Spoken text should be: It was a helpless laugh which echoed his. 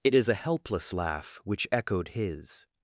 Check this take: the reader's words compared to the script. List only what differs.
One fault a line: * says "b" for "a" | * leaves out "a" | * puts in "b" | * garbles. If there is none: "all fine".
* says "is" for "was"